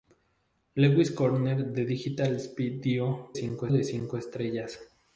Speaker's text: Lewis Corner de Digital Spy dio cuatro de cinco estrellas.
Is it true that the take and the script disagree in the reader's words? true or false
true